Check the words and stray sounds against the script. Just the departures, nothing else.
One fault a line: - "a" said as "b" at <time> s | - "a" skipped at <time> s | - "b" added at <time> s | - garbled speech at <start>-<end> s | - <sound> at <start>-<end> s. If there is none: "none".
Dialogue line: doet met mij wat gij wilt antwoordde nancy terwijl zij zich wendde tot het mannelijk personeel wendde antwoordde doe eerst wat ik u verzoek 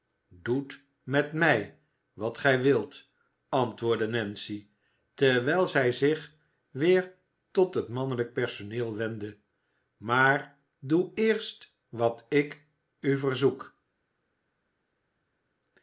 - "wendde" said as "weer" at 6.7 s
- "antwoordde" said as "maar" at 10.0 s